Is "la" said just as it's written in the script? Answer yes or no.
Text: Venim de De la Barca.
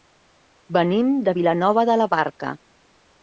yes